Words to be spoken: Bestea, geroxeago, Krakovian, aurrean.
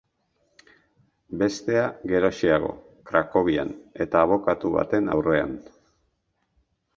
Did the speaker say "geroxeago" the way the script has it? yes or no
yes